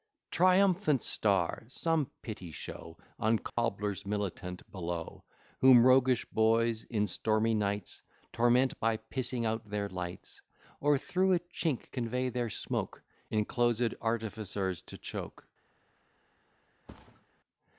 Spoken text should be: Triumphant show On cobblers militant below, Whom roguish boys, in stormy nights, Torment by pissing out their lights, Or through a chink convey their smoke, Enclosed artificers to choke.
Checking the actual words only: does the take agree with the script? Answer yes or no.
no